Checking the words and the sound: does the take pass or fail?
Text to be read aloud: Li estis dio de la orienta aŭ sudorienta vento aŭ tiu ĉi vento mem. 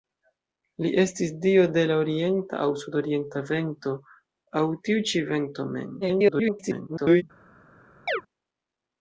fail